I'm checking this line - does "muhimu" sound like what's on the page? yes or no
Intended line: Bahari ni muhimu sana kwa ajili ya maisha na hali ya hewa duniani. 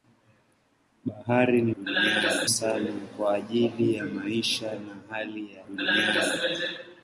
no